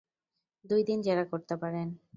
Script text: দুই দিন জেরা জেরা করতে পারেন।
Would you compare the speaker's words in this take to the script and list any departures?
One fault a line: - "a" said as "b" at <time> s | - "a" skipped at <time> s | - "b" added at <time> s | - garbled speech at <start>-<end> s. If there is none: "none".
- "জেরা" skipped at 1.2 s